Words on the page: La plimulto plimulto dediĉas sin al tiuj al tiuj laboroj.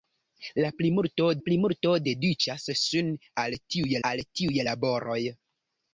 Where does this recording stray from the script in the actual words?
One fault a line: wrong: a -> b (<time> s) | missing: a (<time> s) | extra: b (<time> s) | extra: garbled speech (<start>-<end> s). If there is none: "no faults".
no faults